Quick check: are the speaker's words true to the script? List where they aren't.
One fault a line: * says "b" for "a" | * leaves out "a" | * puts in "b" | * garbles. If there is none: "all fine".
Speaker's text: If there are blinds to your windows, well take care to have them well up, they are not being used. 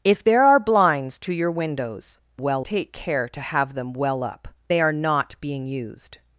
all fine